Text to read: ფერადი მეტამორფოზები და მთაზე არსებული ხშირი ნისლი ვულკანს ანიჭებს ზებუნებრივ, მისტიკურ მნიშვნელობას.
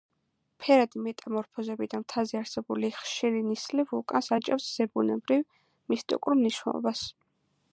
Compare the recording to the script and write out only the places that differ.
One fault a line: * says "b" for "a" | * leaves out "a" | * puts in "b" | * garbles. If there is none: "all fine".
all fine